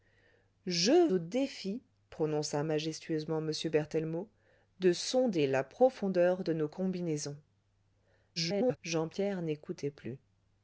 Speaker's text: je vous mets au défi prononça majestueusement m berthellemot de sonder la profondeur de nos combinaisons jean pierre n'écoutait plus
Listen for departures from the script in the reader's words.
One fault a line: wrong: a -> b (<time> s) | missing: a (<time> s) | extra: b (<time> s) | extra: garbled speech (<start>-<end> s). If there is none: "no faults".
missing: vous mets (1.1 s)
extra: garbled speech (8.4-8.8 s)